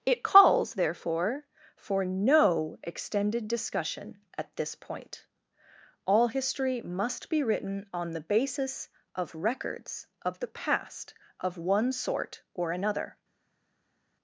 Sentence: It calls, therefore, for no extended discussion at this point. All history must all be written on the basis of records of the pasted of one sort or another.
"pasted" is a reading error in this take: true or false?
true